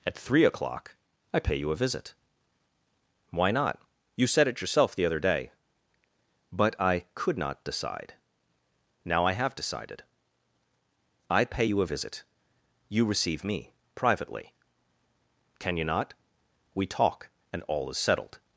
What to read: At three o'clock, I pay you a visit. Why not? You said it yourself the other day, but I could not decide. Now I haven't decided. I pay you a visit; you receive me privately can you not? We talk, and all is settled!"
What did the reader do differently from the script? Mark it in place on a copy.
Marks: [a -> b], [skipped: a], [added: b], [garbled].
At three o'clock, I pay you a visit. Why not? You said it yourself the other day, but I could not decide. Now I [haven't -> have] decided. I pay you a visit; you receive me privately can you not? We talk, and all is settled!"